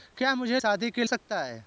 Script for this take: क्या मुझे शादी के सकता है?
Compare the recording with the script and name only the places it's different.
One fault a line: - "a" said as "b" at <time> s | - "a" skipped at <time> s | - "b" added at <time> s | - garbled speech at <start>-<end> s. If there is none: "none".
none